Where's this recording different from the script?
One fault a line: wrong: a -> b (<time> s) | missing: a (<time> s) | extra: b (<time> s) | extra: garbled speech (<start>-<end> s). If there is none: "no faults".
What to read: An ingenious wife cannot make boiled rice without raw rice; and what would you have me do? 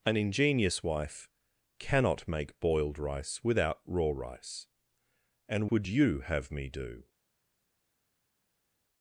missing: what (5.7 s)